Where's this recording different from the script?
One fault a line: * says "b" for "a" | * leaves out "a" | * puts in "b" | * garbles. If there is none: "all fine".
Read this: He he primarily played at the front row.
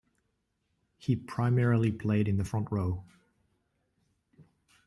* leaves out "he"
* says "in" for "at"